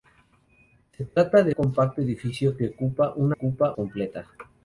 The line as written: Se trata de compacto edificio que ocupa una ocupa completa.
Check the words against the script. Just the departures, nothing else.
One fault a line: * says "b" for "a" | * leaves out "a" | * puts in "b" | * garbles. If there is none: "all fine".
all fine